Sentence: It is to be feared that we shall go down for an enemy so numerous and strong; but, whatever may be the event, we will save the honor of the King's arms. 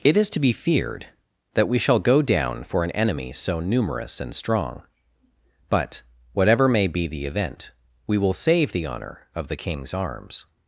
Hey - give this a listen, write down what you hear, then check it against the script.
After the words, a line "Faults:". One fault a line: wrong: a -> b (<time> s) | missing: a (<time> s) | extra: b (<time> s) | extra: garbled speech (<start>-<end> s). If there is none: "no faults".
It is to be feared that we shall go down for an enemy so numerous and strong; but, whatever may be the event, we will save the honor of the King's arms.
Faults:
no faults